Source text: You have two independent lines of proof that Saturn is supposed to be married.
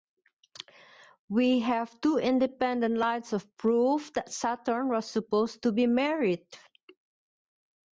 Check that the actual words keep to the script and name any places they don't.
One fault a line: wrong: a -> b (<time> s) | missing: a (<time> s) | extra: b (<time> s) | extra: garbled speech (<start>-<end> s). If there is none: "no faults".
wrong: You -> We (1.3 s)
wrong: is -> was (4.9 s)